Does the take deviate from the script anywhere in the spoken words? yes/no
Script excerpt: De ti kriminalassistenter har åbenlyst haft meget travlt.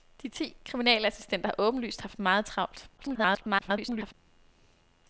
yes